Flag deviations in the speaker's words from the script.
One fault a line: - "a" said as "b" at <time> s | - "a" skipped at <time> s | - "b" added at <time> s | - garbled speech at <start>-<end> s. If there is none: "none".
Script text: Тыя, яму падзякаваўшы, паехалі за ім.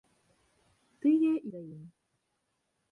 - "яму падзякаваўшы паехалі" skipped at 1.3 s